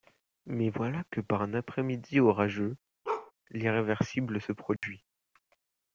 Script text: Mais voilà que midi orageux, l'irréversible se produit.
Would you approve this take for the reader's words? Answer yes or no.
no